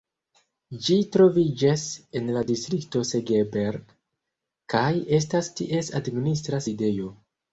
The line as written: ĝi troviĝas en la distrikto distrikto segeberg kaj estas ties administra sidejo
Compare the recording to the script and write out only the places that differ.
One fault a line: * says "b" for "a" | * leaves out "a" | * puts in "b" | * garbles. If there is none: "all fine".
* leaves out "distrikto"